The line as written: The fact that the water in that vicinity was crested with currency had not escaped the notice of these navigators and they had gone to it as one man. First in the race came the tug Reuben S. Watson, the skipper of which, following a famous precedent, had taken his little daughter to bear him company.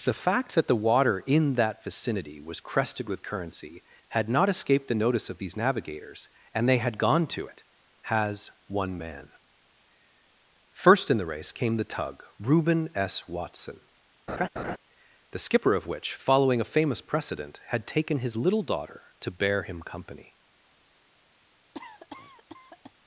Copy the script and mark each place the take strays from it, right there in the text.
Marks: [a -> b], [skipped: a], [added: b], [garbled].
The fact that the water in that vicinity was crested with currency had not escaped the notice of these navigators and they had gone to it [as -> has] one man. First in the race came the tug Reuben S. Watson, the skipper of which, following a famous precedent, had taken his little daughter to bear him company.